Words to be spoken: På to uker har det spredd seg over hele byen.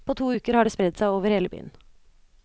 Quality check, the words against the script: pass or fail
pass